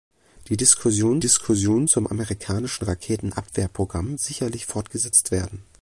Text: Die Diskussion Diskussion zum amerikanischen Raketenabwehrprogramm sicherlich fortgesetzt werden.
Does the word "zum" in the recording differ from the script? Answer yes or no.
no